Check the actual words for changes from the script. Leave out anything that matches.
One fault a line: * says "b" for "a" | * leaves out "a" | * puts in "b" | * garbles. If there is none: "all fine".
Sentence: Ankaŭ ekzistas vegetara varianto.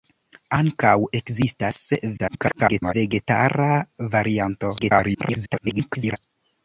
* garbles
* garbles